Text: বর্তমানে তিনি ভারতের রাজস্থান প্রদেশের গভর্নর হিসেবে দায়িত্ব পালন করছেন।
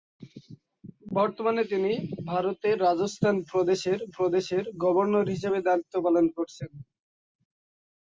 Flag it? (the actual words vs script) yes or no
yes